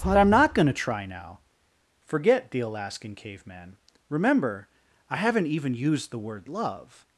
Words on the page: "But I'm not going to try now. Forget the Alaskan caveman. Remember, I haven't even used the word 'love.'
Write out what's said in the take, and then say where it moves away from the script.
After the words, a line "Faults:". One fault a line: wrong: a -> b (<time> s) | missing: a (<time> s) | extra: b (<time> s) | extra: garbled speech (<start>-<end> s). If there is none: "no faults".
"But I'm not going to try now. Forget the Alaskan caveman. Remember, I haven't even used the word 'love.'
Faults:
no faults